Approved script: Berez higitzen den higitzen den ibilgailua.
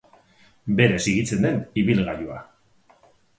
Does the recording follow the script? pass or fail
fail